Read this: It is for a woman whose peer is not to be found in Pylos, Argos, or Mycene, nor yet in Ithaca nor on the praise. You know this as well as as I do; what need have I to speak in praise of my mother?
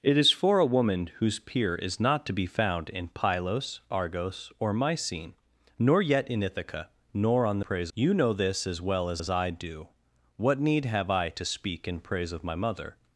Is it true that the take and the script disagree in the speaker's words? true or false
false